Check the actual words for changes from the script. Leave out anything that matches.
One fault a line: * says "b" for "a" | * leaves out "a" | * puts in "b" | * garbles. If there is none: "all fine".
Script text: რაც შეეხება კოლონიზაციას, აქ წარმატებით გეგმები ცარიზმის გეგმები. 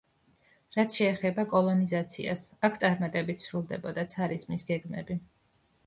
* says "სრულდებოდა" for "გეგმები"